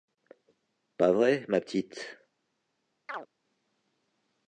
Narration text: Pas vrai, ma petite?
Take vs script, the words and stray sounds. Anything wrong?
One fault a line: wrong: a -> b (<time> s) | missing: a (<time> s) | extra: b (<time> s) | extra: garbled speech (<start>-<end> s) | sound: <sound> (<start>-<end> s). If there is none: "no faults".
sound: chirp (3.1-3.3 s)